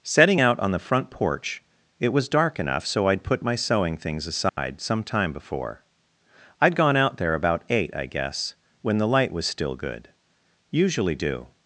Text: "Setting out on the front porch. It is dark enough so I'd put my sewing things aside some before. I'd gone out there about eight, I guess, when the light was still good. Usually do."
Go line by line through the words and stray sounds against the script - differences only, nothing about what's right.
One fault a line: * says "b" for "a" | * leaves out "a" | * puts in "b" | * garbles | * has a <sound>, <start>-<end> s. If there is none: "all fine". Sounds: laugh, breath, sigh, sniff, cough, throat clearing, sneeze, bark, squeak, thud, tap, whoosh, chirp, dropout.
* says "was" for "is"
* has a dropout, 4.5-4.6 s
* puts in "time"